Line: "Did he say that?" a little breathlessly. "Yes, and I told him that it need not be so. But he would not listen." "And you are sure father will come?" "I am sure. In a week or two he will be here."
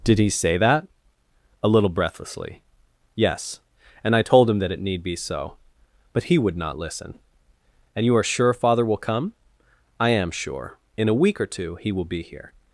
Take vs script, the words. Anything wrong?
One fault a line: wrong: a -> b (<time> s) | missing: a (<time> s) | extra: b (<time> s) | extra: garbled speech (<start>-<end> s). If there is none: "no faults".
missing: not (5.0 s)